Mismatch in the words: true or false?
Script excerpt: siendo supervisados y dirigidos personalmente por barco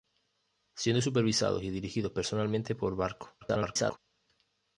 true